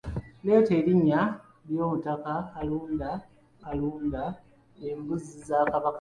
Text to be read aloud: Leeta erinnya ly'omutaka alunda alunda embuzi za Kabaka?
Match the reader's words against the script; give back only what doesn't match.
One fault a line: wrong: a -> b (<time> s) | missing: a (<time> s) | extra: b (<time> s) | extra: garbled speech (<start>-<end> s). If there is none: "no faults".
no faults